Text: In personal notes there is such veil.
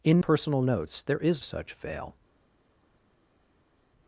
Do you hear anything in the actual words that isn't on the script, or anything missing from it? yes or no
no